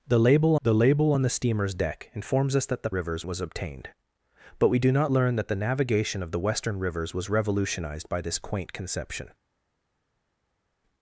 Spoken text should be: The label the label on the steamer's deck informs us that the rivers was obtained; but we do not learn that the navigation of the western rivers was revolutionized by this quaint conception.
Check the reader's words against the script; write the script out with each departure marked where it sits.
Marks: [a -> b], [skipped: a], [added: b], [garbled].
The label the label on the steamer's deck informs us that the rivers was obtained; but we do not learn that the navigation of the western rivers was revolutionized by this quaint conception.